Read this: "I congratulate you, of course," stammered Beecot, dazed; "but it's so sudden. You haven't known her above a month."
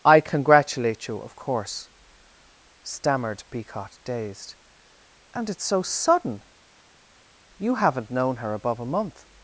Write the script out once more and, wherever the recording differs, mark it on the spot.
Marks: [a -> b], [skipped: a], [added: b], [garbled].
"I congratulate you, of course," stammered Beecot, dazed; ["but -> and] it's so sudden. You haven't known her above a month."